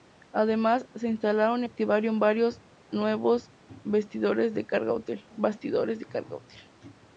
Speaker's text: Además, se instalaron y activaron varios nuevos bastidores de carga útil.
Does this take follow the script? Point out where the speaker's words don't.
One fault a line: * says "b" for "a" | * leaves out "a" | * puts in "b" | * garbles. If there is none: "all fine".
all fine